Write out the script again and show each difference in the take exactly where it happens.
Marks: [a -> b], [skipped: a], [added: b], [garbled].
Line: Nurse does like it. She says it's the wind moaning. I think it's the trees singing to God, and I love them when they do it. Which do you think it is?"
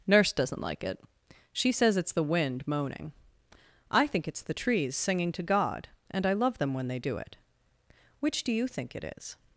Nurse [does -> doesn't] like it. She says it's the wind moaning. I think it's the trees singing to God, and I love them when they do it. Which do you think it is?"